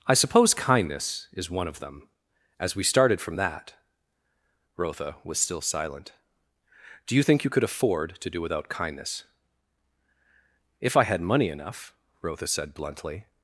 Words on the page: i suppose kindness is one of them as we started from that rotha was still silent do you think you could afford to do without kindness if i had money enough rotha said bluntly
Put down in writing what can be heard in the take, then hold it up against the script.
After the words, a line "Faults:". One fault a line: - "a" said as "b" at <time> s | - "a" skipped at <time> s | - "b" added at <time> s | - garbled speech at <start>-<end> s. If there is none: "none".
i suppose kindness is one of them as we started from that rotha was still silent do you think you could afford to do without kindness if i had money enough rotha said bluntly
Faults:
none